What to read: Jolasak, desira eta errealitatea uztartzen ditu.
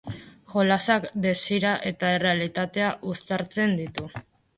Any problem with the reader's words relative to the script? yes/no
no